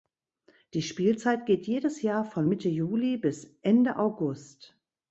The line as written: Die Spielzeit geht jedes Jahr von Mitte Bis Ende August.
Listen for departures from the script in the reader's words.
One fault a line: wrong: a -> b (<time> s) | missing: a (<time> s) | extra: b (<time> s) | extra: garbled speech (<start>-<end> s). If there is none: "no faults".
extra: Juli (2.7 s)